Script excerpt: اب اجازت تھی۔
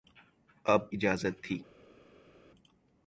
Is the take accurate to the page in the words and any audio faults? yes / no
yes